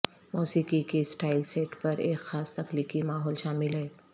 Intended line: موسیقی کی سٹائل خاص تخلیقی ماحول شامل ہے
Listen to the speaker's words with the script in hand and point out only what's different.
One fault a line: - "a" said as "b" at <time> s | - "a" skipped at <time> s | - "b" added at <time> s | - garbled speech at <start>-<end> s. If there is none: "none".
- "سیٹ پر ایک" added at 1.4 s